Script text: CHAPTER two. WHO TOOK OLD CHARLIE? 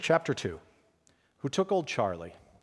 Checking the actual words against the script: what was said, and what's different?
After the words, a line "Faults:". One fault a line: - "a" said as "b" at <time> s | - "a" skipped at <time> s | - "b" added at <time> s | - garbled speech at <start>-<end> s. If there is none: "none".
CHAPTER two. WHO TOOK OLD CHARLIE?
Faults:
none